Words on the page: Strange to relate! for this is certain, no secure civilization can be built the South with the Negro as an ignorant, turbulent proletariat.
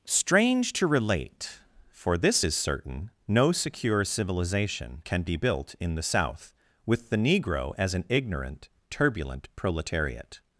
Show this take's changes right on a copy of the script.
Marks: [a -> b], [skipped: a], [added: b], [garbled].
Strange to relate! for this is certain, no secure civilization can be built [added: in] the South with the Negro as an ignorant, turbulent proletariat.